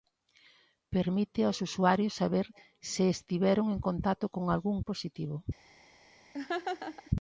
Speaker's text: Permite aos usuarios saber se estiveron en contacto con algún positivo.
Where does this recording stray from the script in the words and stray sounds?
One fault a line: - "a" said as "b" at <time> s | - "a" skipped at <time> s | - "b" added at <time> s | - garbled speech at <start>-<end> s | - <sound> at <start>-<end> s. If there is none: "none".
- laugh at 6.3-7.1 s